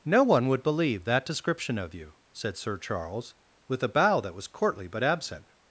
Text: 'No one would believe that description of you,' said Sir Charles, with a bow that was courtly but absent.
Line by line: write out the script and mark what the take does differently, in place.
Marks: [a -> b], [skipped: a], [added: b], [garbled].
'No one would believe that description of you,' said Sir Charles, with a bow that was courtly but absent.